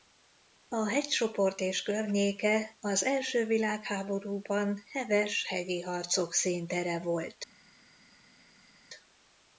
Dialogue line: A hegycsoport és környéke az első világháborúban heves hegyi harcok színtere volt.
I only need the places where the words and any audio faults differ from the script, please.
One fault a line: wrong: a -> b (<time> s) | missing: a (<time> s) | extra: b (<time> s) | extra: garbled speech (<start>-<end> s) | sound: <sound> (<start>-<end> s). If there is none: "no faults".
no faults